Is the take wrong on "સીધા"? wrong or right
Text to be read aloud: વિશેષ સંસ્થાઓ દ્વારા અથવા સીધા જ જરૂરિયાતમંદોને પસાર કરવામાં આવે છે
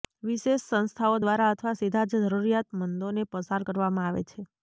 right